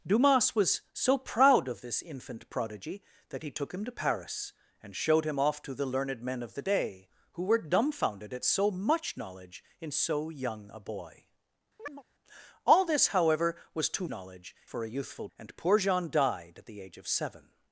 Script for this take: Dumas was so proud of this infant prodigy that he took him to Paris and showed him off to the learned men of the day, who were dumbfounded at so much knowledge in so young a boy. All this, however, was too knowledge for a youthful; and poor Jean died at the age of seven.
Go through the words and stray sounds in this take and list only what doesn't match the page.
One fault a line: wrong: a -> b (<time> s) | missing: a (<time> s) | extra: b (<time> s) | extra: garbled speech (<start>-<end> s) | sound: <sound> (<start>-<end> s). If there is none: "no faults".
sound: chirp (11.8-12.0 s)